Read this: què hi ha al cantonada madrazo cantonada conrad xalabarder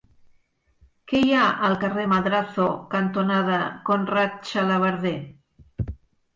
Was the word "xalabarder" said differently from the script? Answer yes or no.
no